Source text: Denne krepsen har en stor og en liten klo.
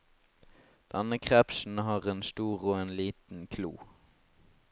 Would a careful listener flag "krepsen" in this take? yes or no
no